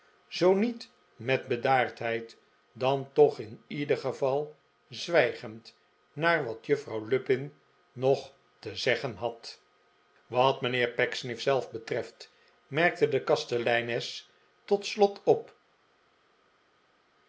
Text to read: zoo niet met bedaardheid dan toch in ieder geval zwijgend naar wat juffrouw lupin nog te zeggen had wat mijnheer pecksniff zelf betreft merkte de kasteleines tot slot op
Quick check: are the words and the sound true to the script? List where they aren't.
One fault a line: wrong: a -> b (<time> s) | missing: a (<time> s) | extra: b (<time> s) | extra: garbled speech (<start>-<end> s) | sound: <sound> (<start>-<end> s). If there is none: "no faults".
no faults